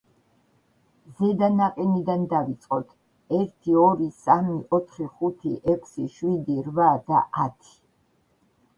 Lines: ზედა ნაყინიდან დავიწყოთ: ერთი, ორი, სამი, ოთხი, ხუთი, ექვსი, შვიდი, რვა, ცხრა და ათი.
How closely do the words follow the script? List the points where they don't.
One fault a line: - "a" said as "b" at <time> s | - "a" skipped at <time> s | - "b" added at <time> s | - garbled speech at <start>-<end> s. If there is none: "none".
- "ცხრა" skipped at 6.9 s